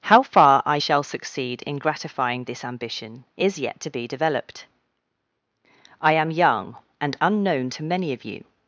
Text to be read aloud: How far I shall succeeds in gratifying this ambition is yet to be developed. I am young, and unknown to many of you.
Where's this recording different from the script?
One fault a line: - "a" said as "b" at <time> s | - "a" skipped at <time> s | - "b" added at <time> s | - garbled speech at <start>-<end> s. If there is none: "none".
- "succeeds" said as "succeed" at 1.0 s